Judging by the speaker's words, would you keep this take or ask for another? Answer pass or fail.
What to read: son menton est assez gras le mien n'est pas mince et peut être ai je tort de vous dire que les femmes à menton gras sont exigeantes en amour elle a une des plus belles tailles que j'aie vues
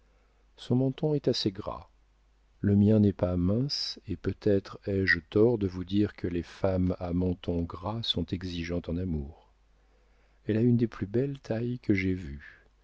pass